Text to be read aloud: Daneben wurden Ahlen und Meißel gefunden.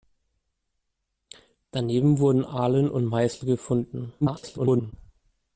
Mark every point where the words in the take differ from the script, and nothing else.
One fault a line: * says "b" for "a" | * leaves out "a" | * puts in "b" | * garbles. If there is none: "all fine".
* garbles